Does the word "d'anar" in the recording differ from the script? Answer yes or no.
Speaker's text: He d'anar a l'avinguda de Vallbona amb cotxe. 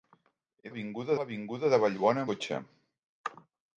yes